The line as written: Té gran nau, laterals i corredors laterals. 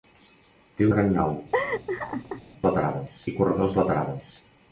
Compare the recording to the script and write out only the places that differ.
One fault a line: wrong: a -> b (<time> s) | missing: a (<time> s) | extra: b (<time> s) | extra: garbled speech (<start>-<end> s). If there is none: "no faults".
no faults